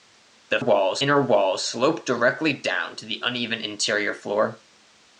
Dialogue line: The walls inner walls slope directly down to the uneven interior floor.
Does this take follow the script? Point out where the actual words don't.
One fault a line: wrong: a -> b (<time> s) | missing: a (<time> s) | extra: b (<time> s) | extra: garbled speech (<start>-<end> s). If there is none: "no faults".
no faults